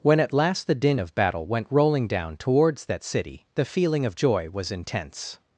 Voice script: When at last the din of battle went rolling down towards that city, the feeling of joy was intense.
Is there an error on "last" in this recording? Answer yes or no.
no